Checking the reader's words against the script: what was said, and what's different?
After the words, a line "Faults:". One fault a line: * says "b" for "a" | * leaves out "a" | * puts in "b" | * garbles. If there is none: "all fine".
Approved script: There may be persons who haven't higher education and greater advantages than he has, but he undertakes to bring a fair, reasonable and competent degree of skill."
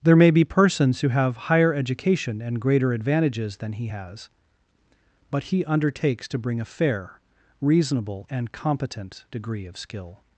There may be persons who have higher education and greater advantages than he has, but he undertakes to bring a fair, reasonable and competent degree of skill."
Faults:
* says "have" for "haven't"